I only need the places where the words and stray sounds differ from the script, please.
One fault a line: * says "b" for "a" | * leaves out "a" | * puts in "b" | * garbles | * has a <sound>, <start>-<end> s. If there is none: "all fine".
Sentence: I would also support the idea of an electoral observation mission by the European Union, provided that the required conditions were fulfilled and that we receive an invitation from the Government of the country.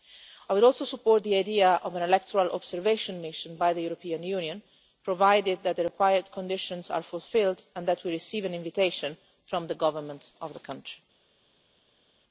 * says "are" for "were"